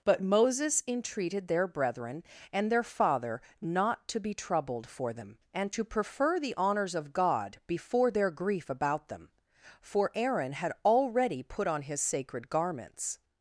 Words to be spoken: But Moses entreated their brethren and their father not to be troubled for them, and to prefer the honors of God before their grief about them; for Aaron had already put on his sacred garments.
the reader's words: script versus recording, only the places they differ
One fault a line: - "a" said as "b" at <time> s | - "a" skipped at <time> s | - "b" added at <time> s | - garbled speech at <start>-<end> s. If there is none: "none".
none